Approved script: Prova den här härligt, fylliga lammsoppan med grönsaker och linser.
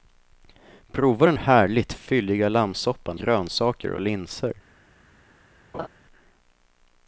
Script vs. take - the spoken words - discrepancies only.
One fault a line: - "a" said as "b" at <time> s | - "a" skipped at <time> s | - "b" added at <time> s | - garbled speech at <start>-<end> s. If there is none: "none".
- "här" skipped at 1.4 s
- "med" skipped at 3.2 s